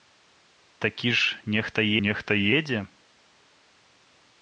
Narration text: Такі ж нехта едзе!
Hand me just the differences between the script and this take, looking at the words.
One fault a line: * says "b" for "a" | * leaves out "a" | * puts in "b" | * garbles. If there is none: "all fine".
* puts in "нехта"